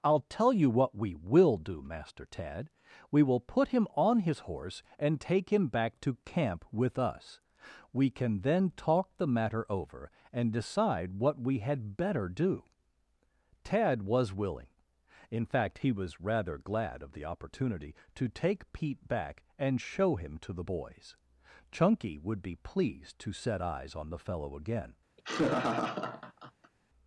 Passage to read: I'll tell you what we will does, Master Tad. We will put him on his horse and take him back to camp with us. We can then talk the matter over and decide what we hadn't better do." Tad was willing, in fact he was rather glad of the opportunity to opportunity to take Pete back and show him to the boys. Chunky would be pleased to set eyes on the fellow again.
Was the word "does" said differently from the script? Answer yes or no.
yes